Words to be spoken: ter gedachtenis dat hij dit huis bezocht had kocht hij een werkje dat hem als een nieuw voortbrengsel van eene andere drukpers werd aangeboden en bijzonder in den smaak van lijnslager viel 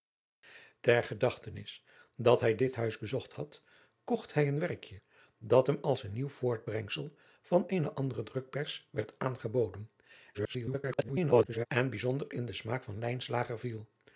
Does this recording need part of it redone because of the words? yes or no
yes